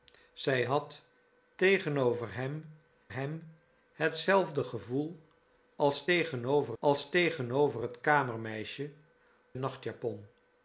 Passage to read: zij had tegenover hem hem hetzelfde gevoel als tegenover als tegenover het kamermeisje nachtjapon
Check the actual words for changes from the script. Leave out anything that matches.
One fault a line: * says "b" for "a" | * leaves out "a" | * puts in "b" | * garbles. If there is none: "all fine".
all fine